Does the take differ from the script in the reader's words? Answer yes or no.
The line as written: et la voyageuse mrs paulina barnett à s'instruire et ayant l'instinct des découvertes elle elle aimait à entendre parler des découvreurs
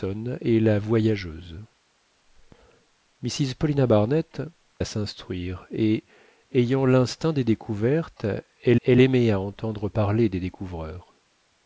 no